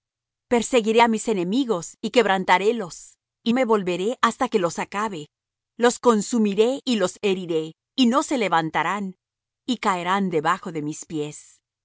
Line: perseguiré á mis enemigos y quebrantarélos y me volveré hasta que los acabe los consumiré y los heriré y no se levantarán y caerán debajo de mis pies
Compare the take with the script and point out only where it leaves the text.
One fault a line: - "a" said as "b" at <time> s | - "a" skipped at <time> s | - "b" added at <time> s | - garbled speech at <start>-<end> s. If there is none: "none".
none